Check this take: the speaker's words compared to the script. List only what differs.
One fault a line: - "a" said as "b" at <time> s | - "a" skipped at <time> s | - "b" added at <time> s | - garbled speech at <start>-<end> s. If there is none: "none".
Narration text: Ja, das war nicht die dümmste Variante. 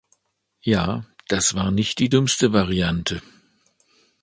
none